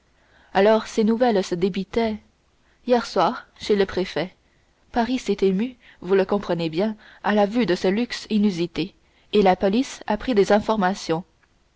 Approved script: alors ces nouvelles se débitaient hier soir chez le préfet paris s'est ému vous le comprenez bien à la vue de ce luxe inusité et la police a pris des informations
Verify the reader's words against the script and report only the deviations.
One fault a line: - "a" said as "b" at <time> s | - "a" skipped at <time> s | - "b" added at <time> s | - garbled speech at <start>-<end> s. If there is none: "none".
none